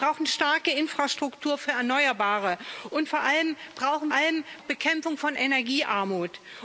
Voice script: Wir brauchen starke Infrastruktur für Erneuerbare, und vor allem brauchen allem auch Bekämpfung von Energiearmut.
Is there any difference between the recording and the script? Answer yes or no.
no